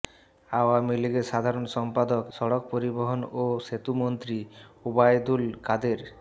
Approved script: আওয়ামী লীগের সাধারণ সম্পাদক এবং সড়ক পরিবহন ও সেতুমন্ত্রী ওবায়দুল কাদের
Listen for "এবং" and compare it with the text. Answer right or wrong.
wrong